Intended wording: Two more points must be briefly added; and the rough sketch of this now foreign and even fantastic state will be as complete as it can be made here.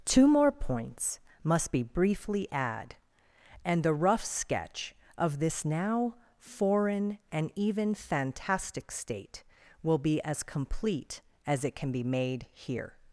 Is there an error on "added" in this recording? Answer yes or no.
yes